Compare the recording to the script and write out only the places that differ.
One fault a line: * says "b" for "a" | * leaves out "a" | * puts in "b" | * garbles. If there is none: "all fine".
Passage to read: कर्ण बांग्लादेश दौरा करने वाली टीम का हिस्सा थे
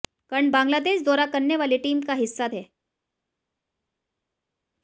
all fine